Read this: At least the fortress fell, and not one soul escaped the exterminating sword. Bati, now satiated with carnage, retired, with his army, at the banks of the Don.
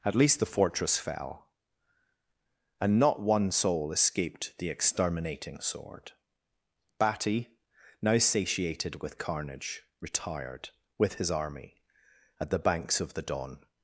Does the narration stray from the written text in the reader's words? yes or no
no